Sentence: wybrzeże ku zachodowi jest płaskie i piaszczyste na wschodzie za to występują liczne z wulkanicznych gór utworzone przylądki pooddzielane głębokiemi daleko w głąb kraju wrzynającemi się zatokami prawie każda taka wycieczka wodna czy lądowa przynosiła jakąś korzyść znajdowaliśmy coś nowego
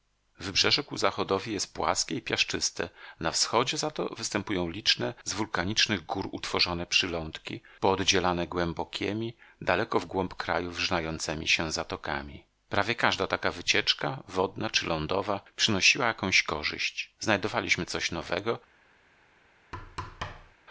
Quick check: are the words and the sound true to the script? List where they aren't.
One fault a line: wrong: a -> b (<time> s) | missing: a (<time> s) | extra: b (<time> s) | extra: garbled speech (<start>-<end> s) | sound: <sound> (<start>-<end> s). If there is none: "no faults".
sound: thud (19.7-20.6 s)